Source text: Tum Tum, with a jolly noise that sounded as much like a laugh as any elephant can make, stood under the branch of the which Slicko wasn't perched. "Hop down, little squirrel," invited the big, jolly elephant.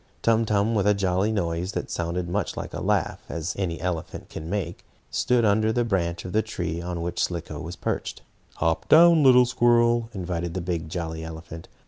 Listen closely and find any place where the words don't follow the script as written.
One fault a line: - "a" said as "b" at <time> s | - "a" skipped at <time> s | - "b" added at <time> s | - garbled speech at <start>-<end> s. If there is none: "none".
- "tree on" added at 6.4 s
- "wasn't" said as "was" at 7.6 s